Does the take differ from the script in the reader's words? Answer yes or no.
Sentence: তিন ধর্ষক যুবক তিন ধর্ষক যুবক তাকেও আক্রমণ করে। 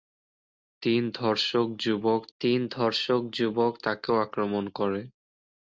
no